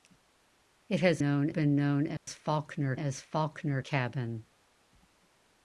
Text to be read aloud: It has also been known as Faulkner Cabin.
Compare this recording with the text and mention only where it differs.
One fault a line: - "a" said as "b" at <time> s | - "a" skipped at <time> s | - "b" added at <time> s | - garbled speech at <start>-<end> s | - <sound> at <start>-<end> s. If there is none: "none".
- "also" said as "known" at 1.2 s
- dropout at 2.2-2.3 s
- "as Faulkner" added at 2.9 s